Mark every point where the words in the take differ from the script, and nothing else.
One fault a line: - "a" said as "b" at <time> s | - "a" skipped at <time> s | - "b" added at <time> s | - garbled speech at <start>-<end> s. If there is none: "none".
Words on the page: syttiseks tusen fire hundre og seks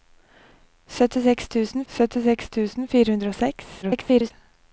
- "syttiseks tusen" added at 1.9 s
- garbled speech at 3.8-4.3 s